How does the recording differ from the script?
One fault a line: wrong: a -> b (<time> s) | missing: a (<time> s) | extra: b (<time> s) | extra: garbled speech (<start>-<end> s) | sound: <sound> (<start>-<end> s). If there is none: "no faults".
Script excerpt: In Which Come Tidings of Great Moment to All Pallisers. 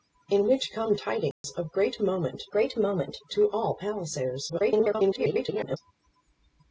sound: dropout (1.3-1.4 s)
extra: Great Moment (2.5 s)
extra: garbled speech (4.5-5.8 s)